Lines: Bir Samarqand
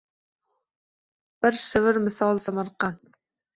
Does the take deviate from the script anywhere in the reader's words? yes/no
yes